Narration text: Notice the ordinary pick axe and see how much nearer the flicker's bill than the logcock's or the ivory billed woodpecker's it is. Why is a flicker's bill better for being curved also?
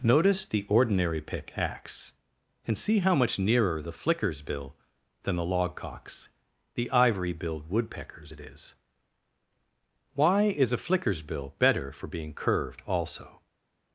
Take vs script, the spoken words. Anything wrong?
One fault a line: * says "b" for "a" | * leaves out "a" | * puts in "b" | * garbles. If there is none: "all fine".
* leaves out "or"